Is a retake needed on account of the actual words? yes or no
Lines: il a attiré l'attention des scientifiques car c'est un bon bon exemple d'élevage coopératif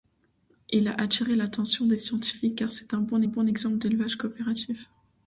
no